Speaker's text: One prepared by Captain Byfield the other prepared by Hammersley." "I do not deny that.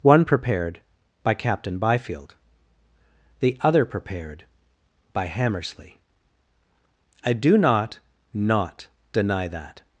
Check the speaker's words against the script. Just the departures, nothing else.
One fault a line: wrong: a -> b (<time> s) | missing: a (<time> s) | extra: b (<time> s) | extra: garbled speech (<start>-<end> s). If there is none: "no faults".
extra: not (8.3 s)